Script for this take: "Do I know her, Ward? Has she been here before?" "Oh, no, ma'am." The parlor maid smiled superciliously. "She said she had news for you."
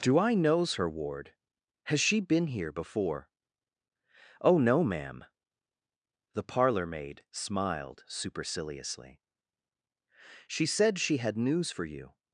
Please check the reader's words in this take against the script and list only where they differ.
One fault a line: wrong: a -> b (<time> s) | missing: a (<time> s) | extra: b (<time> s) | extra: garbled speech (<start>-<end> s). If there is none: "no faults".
wrong: know -> knows (0.3 s)